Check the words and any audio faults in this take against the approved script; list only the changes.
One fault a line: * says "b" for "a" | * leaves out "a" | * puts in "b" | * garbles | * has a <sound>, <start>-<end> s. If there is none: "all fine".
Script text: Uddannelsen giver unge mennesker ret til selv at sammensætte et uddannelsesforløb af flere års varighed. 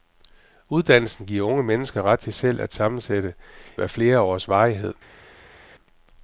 * leaves out "et uddannelsesforløb"